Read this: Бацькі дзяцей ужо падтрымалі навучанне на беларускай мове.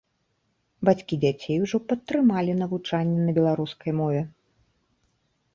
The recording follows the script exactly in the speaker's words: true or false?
true